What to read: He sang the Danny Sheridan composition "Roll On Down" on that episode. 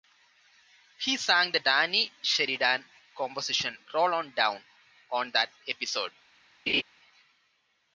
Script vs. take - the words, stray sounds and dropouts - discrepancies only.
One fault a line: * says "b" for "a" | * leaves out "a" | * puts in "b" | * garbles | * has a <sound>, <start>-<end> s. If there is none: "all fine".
* has a laugh, 6.7-6.8 s